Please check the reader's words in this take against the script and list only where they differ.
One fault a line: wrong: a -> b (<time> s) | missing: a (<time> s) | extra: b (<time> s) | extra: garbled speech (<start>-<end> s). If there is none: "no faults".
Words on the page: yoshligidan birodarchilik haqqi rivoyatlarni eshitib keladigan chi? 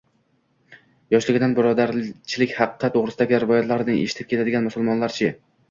extra: to‘g‘risidagi (2.9 s)
extra: musulmonlar (4.7 s)